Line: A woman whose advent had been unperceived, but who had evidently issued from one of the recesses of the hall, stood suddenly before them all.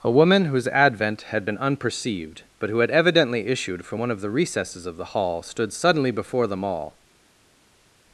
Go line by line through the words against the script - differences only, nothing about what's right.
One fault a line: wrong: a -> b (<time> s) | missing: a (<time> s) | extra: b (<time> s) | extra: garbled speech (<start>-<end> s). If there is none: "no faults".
no faults